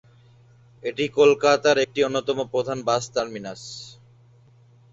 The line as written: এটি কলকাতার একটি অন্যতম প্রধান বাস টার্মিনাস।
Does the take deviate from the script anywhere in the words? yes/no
no